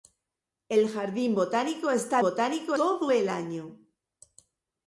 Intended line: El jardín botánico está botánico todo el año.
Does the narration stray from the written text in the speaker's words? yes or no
no